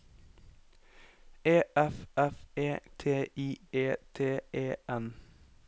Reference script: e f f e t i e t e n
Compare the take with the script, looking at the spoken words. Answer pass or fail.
pass